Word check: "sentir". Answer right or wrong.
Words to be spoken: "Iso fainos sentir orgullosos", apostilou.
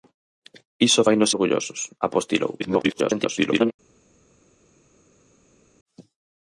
wrong